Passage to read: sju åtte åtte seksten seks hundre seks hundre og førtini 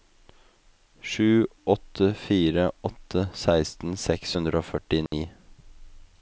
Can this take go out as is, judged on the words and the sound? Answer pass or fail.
fail